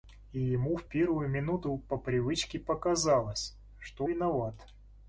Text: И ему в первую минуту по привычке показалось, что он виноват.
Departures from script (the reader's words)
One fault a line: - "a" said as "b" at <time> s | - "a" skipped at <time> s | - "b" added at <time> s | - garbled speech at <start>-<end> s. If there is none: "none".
- "он" skipped at 4.1 s